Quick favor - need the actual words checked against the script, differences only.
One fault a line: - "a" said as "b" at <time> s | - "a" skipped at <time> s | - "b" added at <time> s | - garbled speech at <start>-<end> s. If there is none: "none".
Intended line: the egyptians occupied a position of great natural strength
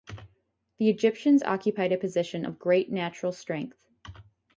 none